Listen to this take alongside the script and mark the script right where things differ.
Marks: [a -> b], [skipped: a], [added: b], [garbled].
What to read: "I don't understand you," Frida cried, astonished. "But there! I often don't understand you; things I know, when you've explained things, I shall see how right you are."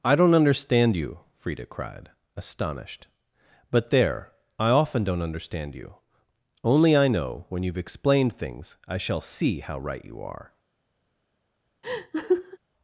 "I don't understand you," Frida cried, astonished. "But there! I often don't understand you; [things -> only] I know, when you've explained things, I shall see how right you are."